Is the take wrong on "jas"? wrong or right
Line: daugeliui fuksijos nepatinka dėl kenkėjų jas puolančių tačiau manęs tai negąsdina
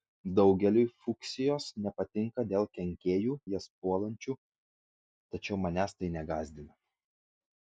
right